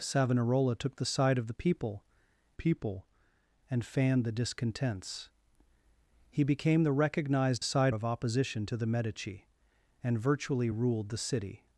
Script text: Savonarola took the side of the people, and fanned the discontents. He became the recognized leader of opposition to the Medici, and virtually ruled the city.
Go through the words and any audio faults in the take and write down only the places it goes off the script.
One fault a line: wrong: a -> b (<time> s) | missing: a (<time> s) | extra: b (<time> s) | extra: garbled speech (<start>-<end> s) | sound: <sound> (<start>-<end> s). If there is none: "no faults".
extra: people (2.5 s)
wrong: leader -> side (7.6 s)